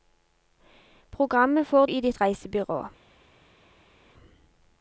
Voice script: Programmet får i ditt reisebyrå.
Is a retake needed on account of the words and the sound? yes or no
no